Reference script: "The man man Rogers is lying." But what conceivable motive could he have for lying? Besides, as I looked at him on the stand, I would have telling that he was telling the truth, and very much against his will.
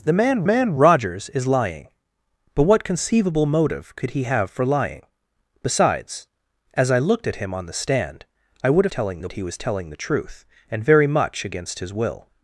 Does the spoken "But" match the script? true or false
true